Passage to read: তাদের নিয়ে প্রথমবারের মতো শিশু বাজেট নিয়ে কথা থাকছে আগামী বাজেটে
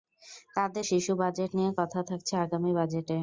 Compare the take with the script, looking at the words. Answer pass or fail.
fail